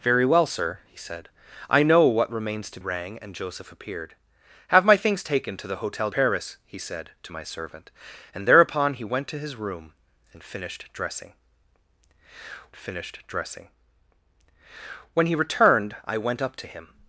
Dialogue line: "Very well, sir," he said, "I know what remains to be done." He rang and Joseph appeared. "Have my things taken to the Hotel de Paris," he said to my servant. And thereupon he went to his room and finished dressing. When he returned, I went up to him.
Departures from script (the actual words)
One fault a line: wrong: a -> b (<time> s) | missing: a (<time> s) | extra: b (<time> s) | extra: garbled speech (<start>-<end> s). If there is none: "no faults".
missing: be done He (2.8 s)
missing: de (6.1 s)
extra: finished dressing (12.8 s)